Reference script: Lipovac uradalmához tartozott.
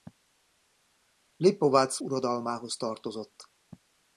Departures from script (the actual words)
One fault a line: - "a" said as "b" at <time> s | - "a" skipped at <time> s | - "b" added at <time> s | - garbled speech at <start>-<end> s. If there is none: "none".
none